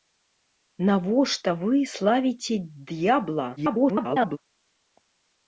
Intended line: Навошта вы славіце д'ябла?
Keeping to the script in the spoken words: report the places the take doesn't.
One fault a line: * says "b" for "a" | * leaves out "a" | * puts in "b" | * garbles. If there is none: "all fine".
* garbles